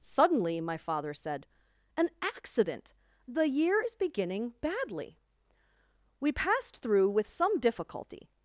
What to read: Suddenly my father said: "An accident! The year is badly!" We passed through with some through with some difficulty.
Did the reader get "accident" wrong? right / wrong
right